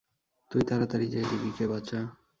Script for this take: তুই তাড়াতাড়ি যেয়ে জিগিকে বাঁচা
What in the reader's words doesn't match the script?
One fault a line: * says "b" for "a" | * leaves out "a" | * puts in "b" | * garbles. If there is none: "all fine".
all fine